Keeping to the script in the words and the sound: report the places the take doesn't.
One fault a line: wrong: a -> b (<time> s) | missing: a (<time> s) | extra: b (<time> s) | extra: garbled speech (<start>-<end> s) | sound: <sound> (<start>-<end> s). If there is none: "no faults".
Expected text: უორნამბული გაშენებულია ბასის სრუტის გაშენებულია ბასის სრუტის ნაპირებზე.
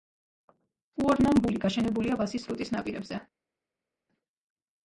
missing: გაშენებულია ბასის სრუტის (2.7 s)